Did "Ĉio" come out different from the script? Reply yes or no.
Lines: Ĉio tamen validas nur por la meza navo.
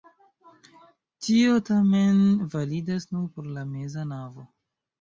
yes